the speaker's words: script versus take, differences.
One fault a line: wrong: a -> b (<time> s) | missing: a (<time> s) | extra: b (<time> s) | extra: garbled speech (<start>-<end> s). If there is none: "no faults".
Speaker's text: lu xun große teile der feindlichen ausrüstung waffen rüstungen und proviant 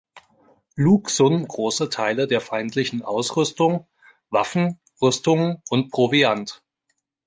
no faults